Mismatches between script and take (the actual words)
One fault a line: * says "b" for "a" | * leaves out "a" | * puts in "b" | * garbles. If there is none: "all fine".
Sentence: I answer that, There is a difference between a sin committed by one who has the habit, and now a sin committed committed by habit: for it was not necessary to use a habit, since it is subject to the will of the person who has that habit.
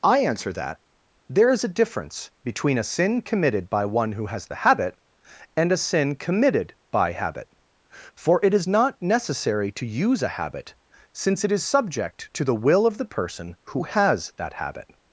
* leaves out "now"
* leaves out "committed"
* says "is" for "was"